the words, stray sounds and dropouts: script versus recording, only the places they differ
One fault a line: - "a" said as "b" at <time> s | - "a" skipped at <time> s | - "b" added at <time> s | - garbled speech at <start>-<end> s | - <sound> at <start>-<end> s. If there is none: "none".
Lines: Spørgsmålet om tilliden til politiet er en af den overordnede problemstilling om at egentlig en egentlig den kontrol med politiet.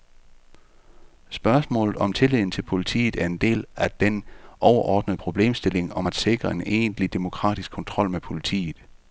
- "del" added at 3.4 s
- "egentlig" said as "sikre" at 6.1 s
- "den" said as "demokratisk" at 7.1 s